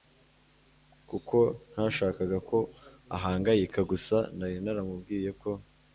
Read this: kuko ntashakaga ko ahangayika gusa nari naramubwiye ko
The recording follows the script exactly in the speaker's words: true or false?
true